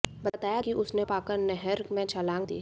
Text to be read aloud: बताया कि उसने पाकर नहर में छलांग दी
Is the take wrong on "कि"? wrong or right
right